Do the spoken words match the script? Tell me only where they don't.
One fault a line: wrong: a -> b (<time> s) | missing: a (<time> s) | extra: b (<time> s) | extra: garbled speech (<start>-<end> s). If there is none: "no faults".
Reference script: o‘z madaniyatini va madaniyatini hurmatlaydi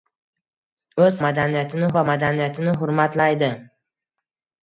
no faults